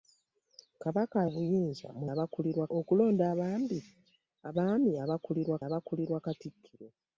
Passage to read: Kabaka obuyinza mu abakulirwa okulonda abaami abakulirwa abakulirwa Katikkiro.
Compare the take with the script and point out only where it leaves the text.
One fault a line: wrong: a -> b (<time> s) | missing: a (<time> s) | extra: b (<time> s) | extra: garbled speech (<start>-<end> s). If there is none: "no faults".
no faults